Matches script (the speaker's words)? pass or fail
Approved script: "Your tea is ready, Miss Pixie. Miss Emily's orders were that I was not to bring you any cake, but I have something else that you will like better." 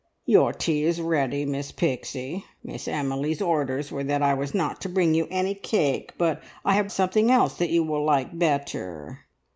pass